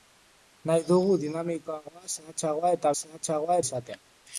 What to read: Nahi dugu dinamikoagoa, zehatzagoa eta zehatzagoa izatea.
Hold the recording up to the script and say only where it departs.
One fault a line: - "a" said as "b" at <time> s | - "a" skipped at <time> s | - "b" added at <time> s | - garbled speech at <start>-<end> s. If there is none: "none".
none